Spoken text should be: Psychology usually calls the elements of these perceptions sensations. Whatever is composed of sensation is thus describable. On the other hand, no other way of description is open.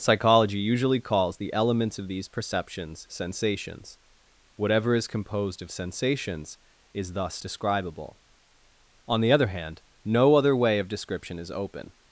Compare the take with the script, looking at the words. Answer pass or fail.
fail